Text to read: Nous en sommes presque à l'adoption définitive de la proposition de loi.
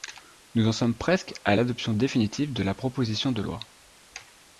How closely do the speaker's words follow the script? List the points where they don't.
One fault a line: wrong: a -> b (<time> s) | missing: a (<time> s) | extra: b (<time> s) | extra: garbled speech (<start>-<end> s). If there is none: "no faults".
no faults